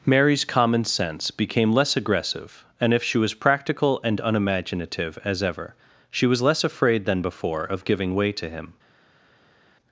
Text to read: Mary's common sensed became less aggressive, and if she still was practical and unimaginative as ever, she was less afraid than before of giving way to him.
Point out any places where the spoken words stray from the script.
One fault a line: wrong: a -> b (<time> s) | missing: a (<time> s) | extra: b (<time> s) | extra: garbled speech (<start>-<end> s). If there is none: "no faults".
wrong: sensed -> sense (0.8 s)
missing: still (3.2 s)